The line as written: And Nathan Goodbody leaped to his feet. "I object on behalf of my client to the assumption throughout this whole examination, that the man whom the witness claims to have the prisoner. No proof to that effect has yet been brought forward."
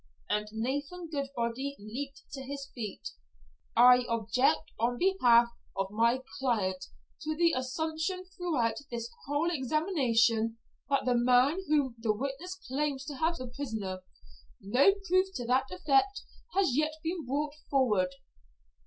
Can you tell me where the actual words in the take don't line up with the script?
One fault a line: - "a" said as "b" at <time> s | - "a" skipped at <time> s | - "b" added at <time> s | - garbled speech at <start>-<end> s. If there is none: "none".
none